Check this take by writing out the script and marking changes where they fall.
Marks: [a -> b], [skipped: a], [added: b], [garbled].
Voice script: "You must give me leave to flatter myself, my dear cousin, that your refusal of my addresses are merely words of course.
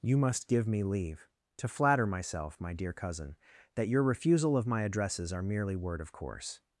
"You must give me leave to flatter myself, my dear cousin, that your refusal of my addresses are merely [words -> word] of course.